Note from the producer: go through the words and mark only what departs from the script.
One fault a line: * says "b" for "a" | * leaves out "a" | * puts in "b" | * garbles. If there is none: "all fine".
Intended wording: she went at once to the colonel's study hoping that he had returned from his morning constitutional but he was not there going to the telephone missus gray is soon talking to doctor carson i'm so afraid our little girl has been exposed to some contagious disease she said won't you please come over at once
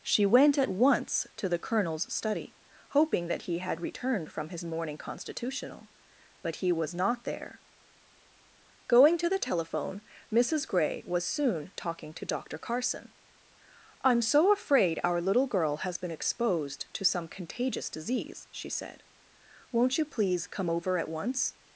* says "was" for "is"